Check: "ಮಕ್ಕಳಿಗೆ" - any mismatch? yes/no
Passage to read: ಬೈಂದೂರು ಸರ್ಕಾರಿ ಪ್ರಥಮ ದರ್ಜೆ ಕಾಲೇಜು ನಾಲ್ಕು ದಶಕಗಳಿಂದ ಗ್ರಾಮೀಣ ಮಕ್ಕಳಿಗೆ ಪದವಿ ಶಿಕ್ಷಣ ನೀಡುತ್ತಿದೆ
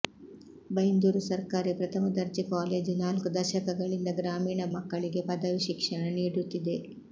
no